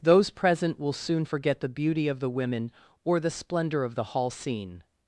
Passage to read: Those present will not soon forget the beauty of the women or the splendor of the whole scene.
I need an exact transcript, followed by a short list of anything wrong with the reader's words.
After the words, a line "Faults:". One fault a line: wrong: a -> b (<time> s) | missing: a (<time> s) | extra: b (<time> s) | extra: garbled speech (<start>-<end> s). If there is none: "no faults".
Those present will soon forget the beauty of the women or the splendor of the hall scene.
Faults:
missing: not (0.9 s)
wrong: whole -> hall (4.0 s)